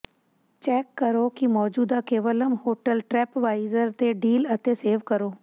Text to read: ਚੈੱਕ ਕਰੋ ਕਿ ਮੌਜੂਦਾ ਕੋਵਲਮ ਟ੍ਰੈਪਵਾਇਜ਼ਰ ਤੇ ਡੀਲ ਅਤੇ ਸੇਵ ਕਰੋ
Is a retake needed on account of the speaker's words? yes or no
yes